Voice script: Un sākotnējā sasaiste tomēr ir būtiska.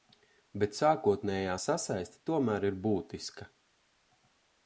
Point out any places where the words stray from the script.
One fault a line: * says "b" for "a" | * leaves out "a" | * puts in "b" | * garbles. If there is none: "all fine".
* says "Bet" for "Un"